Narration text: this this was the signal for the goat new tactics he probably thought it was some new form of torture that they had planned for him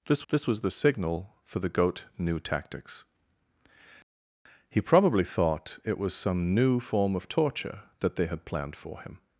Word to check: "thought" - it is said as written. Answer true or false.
true